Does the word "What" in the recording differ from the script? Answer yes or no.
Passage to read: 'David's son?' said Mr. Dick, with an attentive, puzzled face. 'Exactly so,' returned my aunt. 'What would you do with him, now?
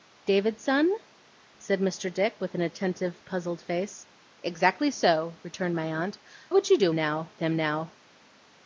yes